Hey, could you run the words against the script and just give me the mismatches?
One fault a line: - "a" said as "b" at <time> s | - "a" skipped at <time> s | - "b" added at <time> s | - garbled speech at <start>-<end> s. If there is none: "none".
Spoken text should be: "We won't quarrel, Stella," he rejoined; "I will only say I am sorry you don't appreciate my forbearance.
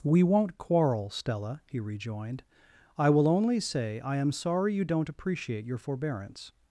- "my" said as "your" at 5.7 s